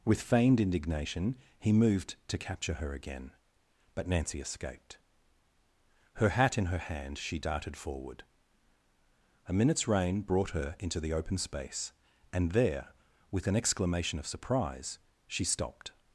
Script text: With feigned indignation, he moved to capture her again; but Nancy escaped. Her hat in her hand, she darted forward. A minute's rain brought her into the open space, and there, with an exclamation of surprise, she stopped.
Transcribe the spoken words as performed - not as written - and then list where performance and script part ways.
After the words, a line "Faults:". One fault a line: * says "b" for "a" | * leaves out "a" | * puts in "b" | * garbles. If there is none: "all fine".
With feigned indignation, he moved to capture her again; but Nancy escaped. Her hat in her hand, she darted forward. A minute's rain brought her into the open space, and there, with an exclamation of surprise, she stopped.
Faults:
all fine